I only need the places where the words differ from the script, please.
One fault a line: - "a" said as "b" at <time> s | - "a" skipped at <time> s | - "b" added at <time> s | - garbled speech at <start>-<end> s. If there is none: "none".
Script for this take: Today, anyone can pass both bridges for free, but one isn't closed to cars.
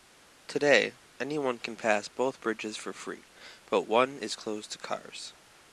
- "isn't" said as "is" at 4.2 s